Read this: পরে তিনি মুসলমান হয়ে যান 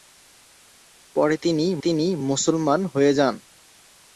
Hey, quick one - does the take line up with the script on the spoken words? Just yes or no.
no